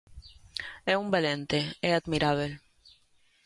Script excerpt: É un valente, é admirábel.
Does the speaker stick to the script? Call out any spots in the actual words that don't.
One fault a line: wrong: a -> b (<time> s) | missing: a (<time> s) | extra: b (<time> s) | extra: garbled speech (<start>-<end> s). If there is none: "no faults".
no faults